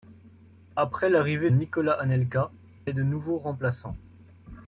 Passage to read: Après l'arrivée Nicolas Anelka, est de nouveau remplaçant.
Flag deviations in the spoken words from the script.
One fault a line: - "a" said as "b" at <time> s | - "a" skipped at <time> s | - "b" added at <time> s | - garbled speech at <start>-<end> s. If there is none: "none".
none